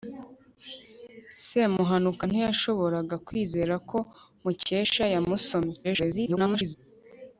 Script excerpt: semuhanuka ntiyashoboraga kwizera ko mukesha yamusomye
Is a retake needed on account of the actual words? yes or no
yes